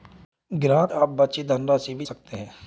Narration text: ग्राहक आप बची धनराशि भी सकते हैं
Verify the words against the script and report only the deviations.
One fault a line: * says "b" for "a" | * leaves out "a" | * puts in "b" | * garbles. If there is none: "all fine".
all fine